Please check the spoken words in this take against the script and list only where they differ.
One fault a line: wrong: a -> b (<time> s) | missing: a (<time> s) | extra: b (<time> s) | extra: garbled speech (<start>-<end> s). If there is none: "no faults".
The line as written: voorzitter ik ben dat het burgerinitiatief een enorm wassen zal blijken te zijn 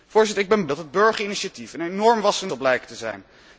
no faults